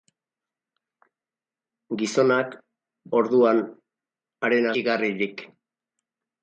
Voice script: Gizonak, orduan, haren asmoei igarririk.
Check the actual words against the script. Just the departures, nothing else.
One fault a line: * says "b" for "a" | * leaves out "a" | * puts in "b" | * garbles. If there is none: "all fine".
* leaves out "asmoei"